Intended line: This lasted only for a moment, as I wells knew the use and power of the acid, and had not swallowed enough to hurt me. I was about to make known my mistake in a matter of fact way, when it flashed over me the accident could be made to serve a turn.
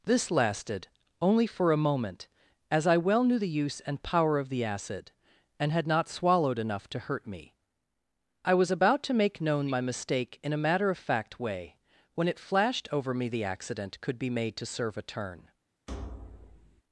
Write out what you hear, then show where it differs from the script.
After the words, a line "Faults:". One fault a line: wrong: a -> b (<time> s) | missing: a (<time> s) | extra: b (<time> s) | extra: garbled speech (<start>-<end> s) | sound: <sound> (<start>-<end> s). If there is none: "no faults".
This lasted only for a moment, as I well knew the use and power of the acid, and had not swallowed enough to hurt me. I was about to make known my mistake in a matter of fact way, when it flashed over me the accident could be made to serve a turn.
Faults:
wrong: wells -> well (3.0 s)
sound: thud (15.9-16.8 s)